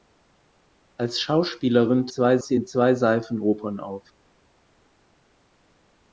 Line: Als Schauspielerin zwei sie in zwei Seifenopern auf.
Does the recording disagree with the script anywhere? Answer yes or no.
no